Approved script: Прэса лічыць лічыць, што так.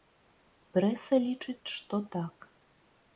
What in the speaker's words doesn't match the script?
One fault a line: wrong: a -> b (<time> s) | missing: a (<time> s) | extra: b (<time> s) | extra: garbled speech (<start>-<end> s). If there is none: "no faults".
missing: лічыць (1.7 s)